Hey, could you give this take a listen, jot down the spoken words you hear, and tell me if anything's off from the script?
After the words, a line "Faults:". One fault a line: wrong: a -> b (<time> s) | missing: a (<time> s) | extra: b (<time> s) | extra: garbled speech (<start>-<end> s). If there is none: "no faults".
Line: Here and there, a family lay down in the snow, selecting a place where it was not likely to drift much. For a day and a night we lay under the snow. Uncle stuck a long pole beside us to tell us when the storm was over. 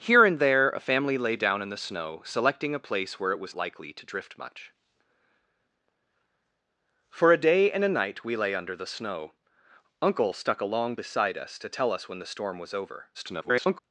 Here and there, a family lay down in the snow, selecting a place where it was likely to drift much. For a day and a night we lay under the snow. Uncle stuck a long beside us to tell us when the storm was over. [garbled]
Faults:
missing: not (3.5 s)
missing: pole (11.0 s)
extra: garbled speech (13.1-13.8 s)